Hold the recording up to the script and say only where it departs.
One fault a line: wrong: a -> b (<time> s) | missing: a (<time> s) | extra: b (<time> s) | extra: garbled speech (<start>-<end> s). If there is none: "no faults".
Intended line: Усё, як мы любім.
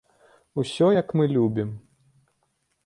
no faults